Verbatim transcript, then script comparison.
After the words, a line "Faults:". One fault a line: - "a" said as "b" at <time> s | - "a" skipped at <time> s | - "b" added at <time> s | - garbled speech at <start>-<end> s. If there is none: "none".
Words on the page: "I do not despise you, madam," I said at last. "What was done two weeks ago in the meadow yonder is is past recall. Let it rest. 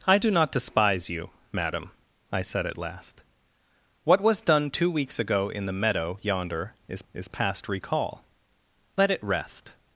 "I do not despise you, madam," I said at last. "What was done two weeks ago in the meadow yonder is is past recall. Let it rest.
Faults:
none